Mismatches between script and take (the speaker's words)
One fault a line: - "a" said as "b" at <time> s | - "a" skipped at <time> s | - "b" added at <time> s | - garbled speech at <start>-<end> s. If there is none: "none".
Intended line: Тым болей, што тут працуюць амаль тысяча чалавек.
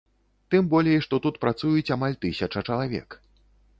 none